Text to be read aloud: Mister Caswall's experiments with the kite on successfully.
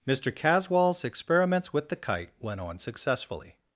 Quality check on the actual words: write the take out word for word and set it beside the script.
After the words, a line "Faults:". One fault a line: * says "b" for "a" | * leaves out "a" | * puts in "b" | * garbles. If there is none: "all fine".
Mister Caswall's experiments with the kite went on successfully.
Faults:
* puts in "went"